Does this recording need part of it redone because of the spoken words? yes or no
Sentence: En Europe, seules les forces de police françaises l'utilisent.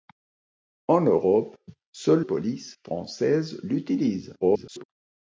yes